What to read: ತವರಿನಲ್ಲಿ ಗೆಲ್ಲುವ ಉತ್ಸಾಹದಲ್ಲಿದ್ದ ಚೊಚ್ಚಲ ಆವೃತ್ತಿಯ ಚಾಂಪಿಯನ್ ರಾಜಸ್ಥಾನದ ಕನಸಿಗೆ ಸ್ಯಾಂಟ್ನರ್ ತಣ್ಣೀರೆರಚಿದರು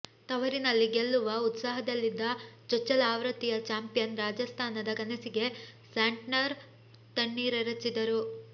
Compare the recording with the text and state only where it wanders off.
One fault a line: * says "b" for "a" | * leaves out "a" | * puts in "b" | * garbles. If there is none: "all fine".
all fine